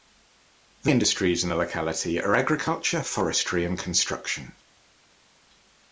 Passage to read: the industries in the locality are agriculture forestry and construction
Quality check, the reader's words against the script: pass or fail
pass